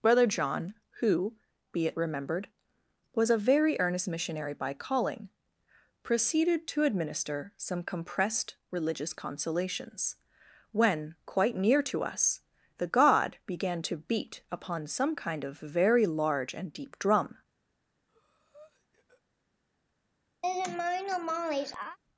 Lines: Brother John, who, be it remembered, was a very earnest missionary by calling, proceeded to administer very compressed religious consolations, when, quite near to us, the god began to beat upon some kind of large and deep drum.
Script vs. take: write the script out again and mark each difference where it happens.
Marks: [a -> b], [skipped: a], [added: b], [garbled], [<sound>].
Brother John, who, be it remembered, was a very earnest missionary by calling, proceeded to administer [very -> some] compressed religious consolations, when, quite near to us, the god began to beat upon some kind of [added: very] large and deep drum. [breath] [laugh]